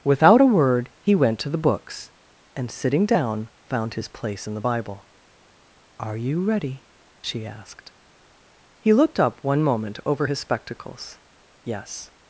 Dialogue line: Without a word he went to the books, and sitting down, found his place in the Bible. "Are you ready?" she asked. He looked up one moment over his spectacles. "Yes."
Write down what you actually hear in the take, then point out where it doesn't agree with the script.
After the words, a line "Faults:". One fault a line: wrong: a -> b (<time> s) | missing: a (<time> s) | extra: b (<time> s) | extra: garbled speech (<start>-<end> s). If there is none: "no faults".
Without a word he went to the books, and sitting down, found his place in the Bible. "Are you ready?" she asked. He looked up one moment over his spectacles. "Yes."
Faults:
no faults